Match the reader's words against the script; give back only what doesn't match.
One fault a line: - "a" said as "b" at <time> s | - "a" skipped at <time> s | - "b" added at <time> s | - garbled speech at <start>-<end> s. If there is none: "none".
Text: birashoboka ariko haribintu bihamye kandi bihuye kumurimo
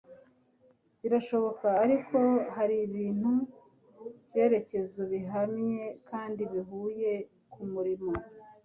- "byerekezo" added at 4.3 s